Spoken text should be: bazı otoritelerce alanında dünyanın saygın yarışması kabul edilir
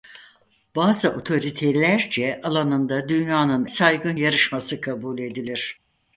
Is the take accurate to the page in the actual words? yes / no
yes